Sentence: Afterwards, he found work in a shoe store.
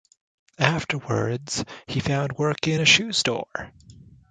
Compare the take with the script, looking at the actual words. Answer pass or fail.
pass